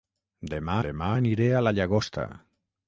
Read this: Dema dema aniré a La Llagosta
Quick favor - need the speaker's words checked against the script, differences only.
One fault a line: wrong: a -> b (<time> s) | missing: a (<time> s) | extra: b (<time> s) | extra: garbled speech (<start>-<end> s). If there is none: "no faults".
no faults